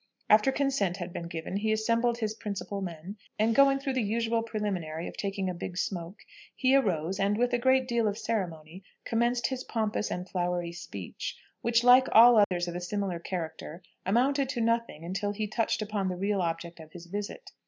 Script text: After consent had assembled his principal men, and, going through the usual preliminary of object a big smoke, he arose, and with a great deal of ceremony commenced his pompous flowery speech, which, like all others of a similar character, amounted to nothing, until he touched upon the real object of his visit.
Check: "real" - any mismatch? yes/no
no